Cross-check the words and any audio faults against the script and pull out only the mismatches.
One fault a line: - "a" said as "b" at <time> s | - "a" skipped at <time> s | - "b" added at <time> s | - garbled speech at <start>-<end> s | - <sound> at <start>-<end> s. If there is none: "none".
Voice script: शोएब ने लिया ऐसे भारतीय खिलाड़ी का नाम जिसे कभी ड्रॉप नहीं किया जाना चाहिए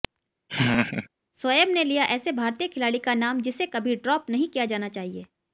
- laugh at 0.5-1.1 s